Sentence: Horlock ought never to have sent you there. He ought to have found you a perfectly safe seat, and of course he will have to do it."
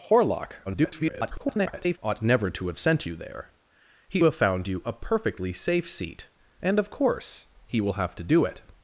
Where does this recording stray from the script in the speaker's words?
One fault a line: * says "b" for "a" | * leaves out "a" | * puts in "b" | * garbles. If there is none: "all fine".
* garbles
* leaves out "ought to"